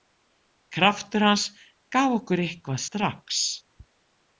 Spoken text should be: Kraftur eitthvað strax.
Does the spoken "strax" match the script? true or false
true